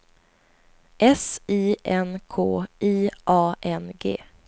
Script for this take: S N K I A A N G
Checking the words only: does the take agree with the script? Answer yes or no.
no